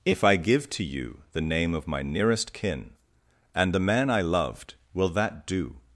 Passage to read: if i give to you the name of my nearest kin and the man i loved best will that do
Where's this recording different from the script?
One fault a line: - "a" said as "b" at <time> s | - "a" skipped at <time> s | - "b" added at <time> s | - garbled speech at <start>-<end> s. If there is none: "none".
- "best" skipped at 4.7 s